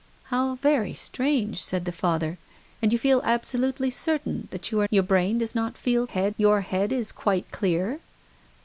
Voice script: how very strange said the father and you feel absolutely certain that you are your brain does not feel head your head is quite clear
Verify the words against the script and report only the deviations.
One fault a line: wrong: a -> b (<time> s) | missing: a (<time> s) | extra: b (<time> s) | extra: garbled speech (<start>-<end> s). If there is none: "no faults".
no faults